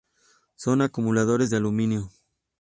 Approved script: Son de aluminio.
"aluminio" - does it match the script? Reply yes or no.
yes